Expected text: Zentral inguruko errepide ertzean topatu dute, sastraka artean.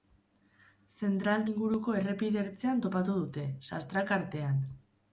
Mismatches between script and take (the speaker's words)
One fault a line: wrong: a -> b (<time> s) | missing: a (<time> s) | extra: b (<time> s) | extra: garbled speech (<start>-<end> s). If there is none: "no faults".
no faults